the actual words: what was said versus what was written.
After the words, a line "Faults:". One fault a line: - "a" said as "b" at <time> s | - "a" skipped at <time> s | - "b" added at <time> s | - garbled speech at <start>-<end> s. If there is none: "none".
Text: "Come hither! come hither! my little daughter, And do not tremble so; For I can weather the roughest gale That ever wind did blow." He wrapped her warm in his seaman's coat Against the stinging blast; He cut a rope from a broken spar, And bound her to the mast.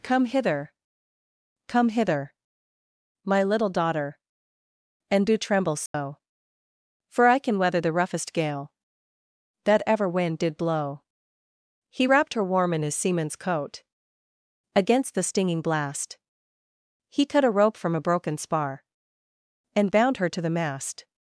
"Come hither! come hither! my little daughter, And do tremble so; For I can weather the roughest gale That ever wind did blow." He wrapped her warm in his seaman's coat Against the stinging blast; He cut a rope from a broken spar, And bound her to the mast.
Faults:
- "not" skipped at 5.4 s